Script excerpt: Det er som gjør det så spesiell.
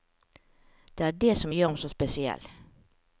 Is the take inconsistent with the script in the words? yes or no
yes